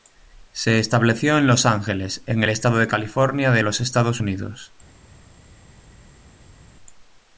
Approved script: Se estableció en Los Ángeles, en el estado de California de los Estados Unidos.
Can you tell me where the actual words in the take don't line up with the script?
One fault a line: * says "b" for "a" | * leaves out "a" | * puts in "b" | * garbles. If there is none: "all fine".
all fine